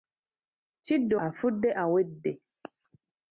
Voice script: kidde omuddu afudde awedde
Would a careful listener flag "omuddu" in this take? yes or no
yes